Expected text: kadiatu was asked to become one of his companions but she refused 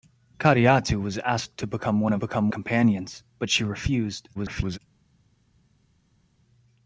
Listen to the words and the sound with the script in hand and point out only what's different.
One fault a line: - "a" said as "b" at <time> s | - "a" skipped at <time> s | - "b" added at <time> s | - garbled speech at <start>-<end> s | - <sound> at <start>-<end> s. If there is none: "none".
- "his" said as "become" at 2.2 s
- garbled speech at 4.3-4.8 s